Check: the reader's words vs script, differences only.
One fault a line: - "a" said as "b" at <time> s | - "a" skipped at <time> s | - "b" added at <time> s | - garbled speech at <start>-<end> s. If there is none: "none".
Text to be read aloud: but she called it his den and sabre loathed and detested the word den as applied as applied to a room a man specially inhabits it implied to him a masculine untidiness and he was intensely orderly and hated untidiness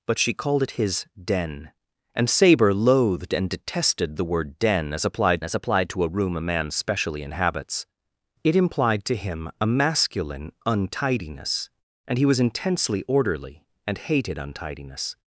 none